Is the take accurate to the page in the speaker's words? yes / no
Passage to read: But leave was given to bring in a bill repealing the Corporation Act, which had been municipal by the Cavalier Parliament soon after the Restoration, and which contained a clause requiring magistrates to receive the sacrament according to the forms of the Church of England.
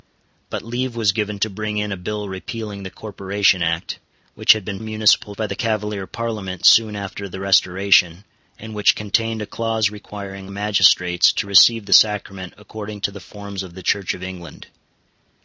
yes